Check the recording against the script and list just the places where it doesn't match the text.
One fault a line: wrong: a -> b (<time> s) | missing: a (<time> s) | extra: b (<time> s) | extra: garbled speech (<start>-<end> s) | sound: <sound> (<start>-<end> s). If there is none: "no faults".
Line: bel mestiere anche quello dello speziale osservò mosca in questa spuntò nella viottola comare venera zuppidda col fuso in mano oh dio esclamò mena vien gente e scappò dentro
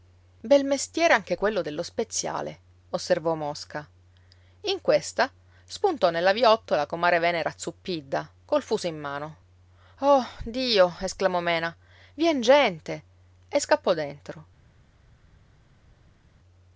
no faults